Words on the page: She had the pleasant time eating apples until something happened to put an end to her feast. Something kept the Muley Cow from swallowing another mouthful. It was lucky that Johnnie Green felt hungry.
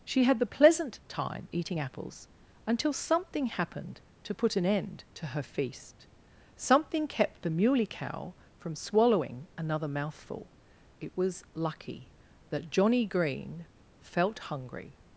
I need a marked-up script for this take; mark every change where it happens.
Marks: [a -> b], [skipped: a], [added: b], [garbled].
She had the pleasant time eating apples until something happened to put an end to her feast. Something kept the Muley Cow from swallowing another mouthful. It was lucky that Johnnie Green felt hungry.